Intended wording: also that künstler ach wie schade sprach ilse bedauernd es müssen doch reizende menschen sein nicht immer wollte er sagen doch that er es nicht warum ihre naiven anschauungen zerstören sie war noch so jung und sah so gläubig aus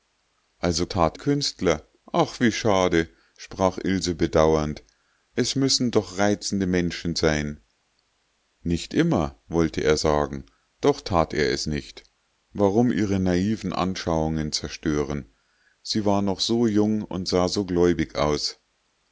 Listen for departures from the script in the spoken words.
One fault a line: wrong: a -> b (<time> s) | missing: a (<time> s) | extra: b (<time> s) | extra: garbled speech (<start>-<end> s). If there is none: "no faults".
no faults